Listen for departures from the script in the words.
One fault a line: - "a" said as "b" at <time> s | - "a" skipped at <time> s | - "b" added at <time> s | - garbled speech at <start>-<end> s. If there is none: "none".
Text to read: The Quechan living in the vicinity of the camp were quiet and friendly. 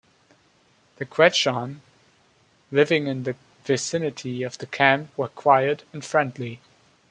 none